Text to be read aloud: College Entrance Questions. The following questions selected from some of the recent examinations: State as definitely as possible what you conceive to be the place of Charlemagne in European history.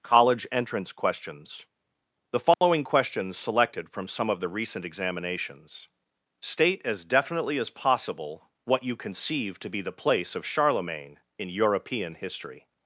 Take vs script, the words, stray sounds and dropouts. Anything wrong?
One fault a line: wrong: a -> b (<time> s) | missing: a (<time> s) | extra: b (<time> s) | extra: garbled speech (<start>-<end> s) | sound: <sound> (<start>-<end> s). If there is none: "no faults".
sound: dropout (2.5-2.6 s)